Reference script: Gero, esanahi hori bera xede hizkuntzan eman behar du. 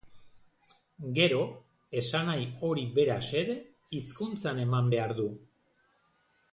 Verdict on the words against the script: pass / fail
pass